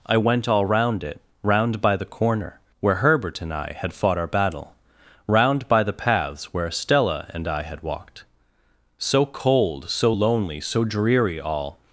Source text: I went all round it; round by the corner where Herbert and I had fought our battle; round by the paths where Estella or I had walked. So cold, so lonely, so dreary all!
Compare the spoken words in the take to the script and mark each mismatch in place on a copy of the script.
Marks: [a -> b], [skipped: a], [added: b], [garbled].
I went all round it; round by the corner where Herbert and I had fought our battle; round by the paths where Estella [or -> and] I had walked. So cold, so lonely, so dreary all!